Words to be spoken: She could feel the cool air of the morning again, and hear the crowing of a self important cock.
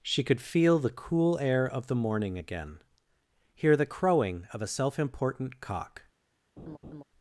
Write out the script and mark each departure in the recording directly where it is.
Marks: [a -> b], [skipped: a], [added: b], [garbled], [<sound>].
She could feel the cool air of the morning again, [skipped: and] hear the crowing of a self important cock. [laugh]